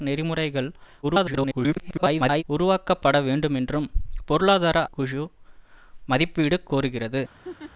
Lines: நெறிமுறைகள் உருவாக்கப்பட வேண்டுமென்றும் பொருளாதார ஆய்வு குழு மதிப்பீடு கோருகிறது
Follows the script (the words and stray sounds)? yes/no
no